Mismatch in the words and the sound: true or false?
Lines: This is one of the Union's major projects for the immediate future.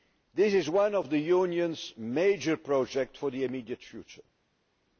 false